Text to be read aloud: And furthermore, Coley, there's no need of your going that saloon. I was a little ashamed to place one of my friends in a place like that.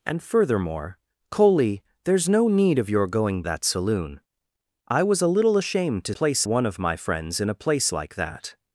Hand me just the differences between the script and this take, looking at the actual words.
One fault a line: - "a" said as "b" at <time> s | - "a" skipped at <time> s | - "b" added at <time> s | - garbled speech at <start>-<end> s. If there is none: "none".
none